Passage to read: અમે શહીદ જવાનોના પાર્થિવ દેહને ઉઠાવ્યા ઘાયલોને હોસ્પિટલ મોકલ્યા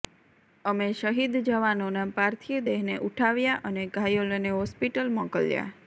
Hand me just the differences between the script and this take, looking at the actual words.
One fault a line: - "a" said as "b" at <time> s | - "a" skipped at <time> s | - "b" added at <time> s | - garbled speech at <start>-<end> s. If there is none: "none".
- "અને" added at 3.7 s